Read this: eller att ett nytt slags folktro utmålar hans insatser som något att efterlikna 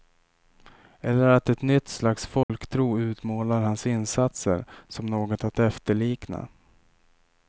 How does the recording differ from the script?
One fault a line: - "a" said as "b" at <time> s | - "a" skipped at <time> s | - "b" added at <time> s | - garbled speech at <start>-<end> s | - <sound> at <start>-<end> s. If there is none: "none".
- dropout at 2.4-2.5 s